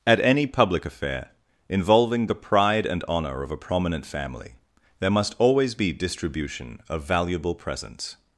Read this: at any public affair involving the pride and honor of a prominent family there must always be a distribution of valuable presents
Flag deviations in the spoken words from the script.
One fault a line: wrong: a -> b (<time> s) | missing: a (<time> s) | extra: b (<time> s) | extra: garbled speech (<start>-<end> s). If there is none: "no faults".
missing: a (5.9 s)